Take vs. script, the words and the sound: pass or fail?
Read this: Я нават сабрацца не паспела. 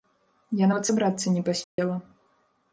fail